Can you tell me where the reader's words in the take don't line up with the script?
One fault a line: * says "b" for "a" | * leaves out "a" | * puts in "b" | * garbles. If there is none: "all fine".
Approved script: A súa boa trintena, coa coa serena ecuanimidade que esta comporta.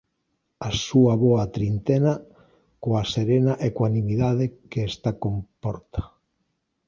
* leaves out "coa"